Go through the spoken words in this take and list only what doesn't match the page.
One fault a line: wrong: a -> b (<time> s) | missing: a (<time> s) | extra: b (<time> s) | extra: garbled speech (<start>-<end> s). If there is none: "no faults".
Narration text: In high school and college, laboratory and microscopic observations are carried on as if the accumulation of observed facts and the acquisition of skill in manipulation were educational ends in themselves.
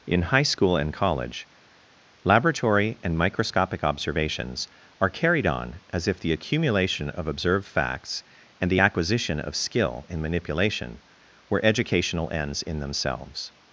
no faults